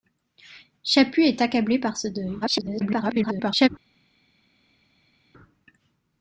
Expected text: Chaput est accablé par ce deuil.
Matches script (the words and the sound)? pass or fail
fail